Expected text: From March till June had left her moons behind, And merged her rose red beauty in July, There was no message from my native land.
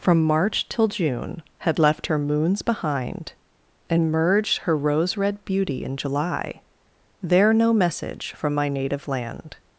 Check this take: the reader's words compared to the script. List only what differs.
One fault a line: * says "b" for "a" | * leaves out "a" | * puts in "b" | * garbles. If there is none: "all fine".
* leaves out "was"